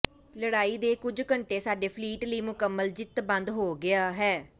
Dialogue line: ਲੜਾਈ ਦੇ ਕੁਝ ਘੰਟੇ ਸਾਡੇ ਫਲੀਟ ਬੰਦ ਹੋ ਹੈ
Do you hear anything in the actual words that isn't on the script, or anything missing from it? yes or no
yes